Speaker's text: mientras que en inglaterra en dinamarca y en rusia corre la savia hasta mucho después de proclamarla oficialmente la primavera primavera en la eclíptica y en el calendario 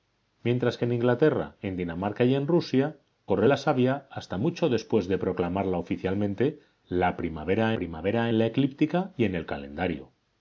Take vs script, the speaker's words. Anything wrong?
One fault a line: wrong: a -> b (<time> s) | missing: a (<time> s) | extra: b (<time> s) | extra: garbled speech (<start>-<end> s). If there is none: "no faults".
no faults